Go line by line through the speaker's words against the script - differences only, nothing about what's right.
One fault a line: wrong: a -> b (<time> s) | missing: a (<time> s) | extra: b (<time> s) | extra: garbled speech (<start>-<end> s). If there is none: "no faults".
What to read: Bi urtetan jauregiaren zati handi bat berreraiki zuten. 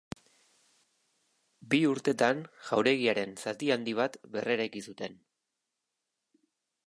no faults